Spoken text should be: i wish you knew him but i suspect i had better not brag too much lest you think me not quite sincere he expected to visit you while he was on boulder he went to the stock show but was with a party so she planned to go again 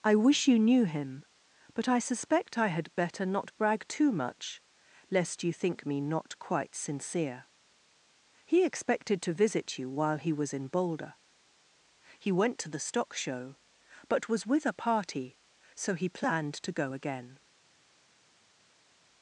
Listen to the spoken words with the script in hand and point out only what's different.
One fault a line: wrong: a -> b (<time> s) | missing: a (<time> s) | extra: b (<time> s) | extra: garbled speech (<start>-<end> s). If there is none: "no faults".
wrong: on -> in (10.5 s)
wrong: she -> he (16.0 s)